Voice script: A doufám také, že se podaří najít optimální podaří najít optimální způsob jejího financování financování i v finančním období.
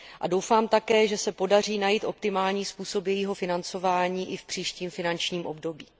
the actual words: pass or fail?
fail